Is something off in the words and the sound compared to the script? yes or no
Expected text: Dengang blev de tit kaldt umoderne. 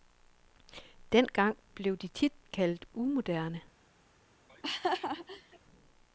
yes